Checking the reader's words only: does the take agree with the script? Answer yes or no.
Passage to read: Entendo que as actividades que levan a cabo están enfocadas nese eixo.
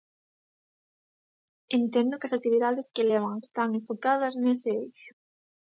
no